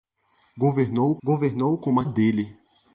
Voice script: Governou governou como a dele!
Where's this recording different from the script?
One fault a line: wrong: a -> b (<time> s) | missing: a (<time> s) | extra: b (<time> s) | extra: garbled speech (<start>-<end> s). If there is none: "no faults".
no faults